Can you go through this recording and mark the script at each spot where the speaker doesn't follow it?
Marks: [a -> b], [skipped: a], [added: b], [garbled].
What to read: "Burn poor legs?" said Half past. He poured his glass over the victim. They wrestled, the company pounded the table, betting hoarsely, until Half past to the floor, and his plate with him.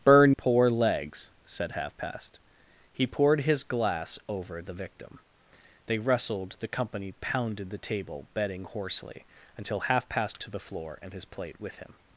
"Burn poor legs?" said Half past. He poured his glass over the victim. They wrestled, the company pounded the table, betting hoarsely, until Half past to the floor, and his plate with him.